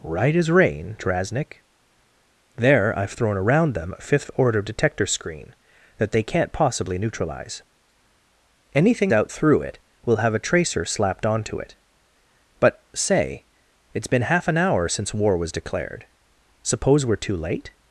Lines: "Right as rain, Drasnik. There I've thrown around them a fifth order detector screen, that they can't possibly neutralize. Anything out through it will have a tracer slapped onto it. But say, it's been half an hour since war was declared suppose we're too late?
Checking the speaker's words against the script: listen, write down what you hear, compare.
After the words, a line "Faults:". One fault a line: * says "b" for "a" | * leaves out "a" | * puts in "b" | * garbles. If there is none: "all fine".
"Right as rain, Drasnik. There I've thrown around them a fifth order detector screen, that they can't possibly neutralize. Anything out through it will have a tracer slapped onto it. But say, it's been half an hour since war was declared suppose we're too late?
Faults:
all fine